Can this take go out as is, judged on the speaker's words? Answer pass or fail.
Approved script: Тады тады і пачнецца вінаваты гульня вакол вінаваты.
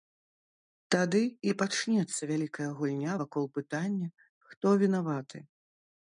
fail